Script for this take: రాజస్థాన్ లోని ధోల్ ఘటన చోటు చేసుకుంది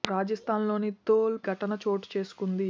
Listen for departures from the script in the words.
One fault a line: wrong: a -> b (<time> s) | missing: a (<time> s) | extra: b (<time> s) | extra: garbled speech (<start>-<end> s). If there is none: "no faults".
no faults